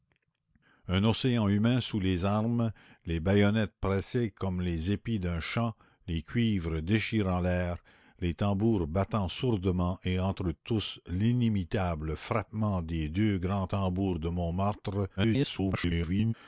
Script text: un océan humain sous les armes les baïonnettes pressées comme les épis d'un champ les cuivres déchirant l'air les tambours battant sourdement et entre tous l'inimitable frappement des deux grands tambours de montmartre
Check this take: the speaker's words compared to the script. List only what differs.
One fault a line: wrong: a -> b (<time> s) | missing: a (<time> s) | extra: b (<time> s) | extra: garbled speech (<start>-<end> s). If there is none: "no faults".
extra: garbled speech (15.2-16.3 s)